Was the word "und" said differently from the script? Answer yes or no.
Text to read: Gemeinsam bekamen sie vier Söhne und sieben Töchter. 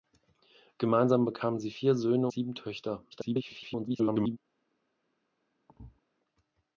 yes